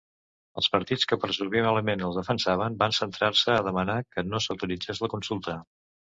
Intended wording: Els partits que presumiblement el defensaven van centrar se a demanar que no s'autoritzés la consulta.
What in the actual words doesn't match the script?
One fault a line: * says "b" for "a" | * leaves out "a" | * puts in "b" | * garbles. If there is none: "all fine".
all fine